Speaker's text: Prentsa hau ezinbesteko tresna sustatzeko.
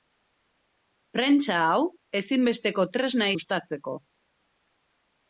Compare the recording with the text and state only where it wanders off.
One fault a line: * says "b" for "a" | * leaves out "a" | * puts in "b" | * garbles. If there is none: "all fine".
all fine